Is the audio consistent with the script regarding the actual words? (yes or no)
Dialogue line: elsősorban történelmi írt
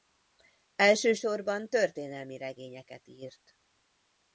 no